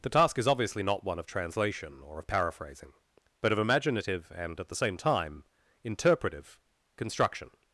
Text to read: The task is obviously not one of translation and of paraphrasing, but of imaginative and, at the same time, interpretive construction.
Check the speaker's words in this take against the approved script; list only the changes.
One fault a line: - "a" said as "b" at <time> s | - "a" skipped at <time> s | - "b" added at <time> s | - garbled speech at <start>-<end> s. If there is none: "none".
- "and" said as "or" at 2.0 s